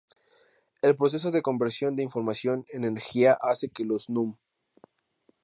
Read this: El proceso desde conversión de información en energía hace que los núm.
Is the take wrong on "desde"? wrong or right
wrong